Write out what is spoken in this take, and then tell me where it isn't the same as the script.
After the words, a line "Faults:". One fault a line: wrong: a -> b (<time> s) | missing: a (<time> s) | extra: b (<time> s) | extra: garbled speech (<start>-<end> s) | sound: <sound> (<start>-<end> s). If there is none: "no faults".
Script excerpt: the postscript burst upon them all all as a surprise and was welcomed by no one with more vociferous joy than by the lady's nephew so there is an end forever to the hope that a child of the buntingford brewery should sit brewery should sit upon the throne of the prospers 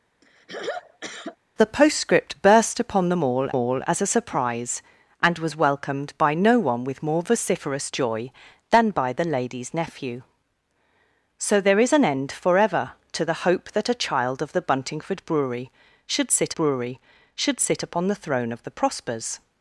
the postscript burst upon them all all as a surprise and was welcomed by no one with more vociferous joy than by the lady's nephew so there is an end forever to the hope that a child of the buntingford brewery should sit brewery should sit upon the throne of the prospers
Faults:
sound: throat clearing (0.2-1.4 s)